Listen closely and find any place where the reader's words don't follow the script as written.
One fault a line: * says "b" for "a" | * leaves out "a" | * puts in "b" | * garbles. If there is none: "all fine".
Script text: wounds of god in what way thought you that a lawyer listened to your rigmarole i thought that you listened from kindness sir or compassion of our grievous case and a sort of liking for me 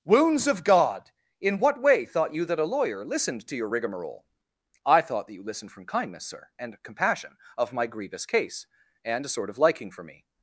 * says "and" for "or"
* says "my" for "our"